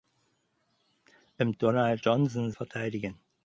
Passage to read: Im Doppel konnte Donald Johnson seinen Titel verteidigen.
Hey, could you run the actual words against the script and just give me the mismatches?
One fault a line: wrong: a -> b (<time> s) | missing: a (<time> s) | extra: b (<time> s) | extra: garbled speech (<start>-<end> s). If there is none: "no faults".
missing: Doppel konnte (1.5 s)
missing: seinen Titel (2.5 s)